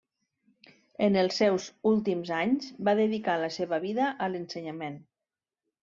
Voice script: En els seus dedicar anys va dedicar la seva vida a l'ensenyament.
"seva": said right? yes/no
yes